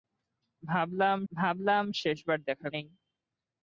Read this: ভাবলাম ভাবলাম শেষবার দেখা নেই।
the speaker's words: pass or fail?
pass